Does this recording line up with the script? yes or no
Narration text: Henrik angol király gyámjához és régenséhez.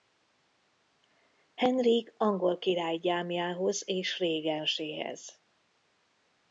yes